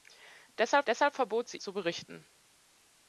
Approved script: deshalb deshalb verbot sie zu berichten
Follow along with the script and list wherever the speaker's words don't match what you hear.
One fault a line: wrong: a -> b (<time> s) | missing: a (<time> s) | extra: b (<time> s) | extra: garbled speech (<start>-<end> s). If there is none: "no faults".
no faults